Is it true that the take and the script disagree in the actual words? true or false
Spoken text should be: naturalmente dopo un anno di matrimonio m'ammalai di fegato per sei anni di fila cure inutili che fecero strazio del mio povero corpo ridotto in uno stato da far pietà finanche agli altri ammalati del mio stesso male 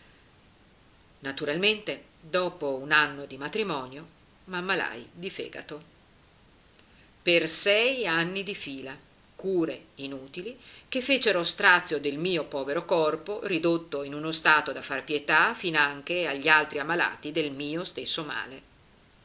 false